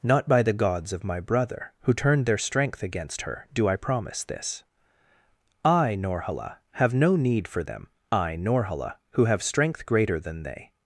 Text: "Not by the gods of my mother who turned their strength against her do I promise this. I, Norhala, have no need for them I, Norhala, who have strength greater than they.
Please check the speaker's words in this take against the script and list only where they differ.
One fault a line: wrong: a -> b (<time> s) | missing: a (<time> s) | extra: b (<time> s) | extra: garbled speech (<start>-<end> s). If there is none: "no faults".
wrong: mother -> brother (1.2 s)